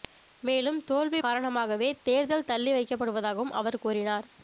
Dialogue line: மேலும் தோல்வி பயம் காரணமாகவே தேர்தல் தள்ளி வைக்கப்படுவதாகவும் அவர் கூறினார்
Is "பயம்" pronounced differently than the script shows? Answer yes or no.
yes